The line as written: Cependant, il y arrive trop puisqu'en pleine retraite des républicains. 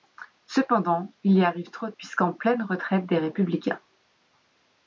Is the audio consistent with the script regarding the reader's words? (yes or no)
yes